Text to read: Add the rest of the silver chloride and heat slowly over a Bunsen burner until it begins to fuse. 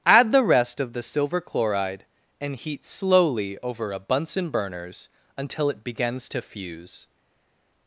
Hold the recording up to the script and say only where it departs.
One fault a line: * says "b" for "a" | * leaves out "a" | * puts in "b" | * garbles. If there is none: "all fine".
* says "burners" for "burner"